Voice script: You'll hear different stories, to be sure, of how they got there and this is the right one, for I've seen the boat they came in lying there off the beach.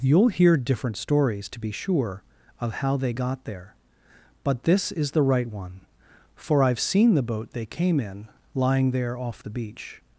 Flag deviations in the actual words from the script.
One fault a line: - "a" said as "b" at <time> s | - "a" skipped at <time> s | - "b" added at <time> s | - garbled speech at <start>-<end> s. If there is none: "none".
- "and" said as "but" at 4.4 s